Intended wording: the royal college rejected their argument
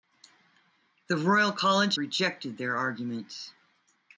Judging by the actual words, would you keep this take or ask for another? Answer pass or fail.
pass